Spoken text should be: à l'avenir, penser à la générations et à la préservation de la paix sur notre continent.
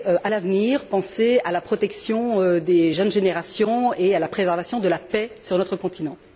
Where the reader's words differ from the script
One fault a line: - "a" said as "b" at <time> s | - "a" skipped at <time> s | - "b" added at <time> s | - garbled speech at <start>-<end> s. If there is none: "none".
- "protection des jeunes" added at 1.6 s